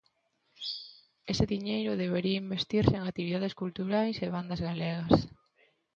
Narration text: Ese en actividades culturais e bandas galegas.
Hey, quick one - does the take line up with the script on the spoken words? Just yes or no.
no